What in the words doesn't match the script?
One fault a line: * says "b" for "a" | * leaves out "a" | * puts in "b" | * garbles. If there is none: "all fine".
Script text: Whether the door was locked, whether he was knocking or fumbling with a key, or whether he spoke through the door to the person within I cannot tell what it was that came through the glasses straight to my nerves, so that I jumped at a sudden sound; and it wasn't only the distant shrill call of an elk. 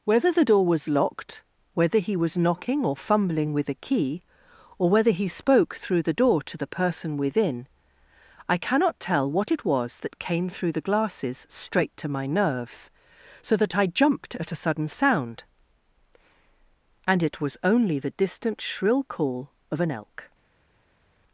* says "was" for "wasn't"